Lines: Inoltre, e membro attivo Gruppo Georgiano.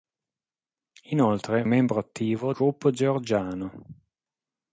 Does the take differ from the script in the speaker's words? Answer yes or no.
no